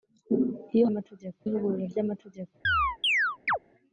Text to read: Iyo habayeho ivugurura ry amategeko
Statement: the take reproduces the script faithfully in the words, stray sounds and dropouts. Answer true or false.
false